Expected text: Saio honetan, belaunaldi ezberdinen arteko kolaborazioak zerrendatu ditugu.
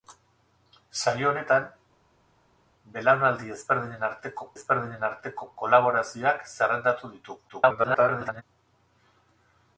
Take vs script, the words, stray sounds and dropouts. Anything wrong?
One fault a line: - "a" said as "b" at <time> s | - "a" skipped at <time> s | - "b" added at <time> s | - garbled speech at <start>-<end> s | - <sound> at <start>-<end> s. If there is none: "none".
- "ezberdinen arteko" added at 4.6 s
- garbled speech at 7.5-8.4 s